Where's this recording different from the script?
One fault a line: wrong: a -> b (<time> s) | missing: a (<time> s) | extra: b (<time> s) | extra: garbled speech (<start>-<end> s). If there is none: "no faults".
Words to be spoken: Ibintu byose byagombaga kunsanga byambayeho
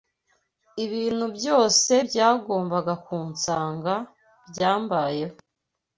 no faults